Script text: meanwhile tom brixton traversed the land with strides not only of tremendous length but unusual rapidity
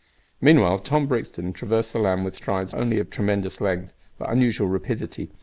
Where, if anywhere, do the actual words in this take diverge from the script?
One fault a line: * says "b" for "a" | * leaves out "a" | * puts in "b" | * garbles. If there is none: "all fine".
* leaves out "not"